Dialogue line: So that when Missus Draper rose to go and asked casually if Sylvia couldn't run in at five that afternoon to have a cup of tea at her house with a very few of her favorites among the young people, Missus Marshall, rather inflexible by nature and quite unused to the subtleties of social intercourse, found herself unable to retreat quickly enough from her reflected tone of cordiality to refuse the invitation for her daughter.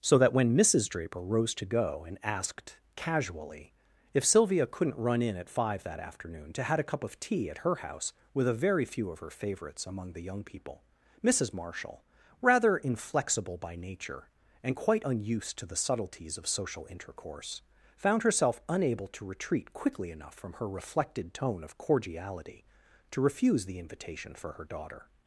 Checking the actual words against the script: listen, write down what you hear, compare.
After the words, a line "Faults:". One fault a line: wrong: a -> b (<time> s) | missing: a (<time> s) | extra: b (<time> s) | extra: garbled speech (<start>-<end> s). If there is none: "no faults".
So that when Missus Draper rose to go and asked casually if Sylvia couldn't run in at five that afternoon to had a cup of tea at her house with a very few of her favorites among the young people, Missus Marshall, rather inflexible by nature and quite unused to the subtleties of social intercourse, found herself unable to retreat quickly enough from her reflected tone of cordiality to refuse the invitation for her daughter.
Faults:
wrong: have -> had (6.6 s)